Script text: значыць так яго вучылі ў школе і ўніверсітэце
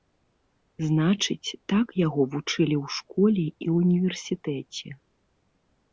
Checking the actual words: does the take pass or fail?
pass